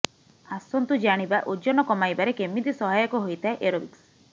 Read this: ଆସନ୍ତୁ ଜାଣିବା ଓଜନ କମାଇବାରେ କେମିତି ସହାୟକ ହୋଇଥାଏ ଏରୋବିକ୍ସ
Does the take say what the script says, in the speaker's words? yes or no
yes